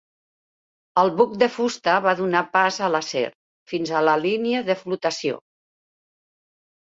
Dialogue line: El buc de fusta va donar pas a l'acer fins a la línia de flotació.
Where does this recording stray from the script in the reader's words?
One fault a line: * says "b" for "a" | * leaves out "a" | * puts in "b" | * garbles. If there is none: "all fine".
all fine